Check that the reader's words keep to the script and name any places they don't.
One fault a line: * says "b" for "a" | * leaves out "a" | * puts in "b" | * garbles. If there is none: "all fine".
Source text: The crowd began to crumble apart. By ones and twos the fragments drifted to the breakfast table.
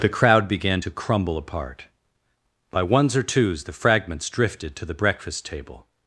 * says "or" for "and"